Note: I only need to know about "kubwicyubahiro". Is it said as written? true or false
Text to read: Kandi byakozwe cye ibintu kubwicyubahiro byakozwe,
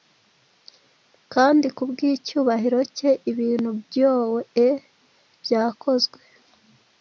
false